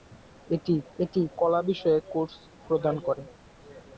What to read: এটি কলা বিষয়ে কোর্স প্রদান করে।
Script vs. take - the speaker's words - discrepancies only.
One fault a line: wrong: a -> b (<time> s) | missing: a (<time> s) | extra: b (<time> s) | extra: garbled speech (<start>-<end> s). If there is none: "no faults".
extra: এটি (1.0 s)